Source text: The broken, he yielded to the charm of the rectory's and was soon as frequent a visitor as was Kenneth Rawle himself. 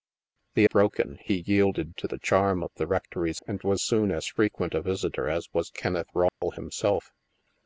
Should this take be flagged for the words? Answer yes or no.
no